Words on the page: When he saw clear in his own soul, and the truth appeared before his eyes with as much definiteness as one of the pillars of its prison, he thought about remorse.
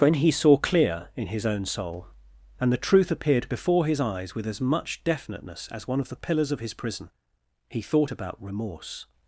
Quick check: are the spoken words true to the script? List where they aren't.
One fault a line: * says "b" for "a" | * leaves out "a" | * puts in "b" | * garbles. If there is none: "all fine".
* says "his" for "its"